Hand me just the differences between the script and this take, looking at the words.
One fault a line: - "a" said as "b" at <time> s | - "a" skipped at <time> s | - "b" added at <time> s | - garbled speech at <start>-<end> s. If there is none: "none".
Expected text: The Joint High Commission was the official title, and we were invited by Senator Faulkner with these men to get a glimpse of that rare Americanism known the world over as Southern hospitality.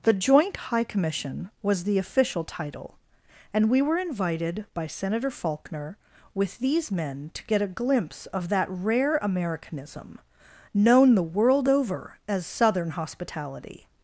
none